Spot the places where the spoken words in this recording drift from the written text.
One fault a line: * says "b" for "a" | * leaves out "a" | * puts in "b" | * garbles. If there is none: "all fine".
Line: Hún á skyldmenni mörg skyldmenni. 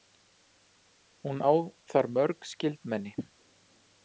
* says "þar" for "skyldmenni"